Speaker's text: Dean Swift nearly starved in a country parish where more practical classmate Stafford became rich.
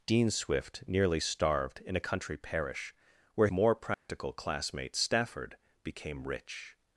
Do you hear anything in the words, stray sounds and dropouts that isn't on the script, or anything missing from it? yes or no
yes